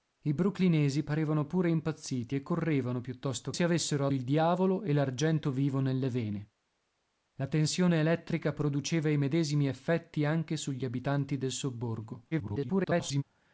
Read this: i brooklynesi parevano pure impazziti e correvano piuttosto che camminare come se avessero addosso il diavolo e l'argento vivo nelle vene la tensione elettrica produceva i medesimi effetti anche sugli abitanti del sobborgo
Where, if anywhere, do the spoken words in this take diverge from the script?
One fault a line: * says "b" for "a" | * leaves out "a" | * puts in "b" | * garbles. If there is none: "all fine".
* leaves out "che camminare come"
* leaves out "addosso"
* garbles